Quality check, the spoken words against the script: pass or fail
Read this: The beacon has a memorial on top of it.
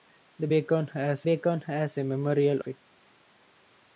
fail